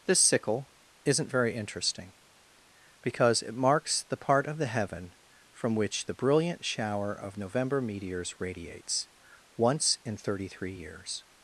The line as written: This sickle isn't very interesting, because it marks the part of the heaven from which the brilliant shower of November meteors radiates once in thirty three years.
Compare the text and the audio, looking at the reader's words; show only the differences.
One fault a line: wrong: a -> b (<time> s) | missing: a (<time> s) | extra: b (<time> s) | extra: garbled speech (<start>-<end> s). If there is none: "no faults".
no faults